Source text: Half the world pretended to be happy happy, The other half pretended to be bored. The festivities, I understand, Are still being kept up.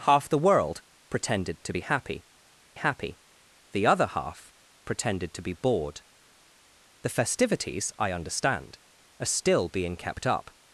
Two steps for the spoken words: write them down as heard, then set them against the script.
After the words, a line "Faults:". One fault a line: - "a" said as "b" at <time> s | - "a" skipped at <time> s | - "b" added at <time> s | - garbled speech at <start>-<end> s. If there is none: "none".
Half the world pretended to be happy happy, The other half pretended to be bored. The festivities, I understand, Are still being kept up.
Faults:
none